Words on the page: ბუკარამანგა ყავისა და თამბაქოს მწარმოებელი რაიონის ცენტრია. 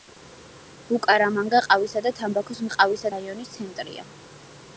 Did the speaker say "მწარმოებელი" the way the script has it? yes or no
no